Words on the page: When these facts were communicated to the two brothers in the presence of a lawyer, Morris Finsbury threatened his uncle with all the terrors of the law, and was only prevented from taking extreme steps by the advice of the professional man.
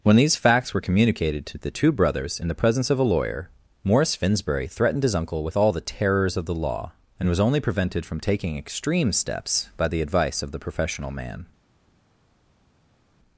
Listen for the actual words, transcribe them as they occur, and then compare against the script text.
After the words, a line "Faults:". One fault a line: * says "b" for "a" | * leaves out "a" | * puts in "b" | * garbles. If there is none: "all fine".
When these facts were communicated to the two brothers in the presence of a lawyer, Morris Finsbury threatened his uncle with all the terrors of the law, and was only prevented from taking extreme steps by the advice of the professional man.
Faults:
all fine